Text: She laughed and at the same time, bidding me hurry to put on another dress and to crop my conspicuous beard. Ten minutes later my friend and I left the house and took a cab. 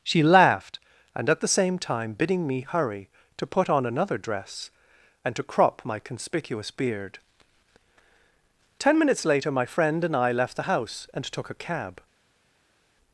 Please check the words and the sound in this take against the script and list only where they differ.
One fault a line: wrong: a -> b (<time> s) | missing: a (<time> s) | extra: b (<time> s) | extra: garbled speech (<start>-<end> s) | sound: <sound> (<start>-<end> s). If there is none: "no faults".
no faults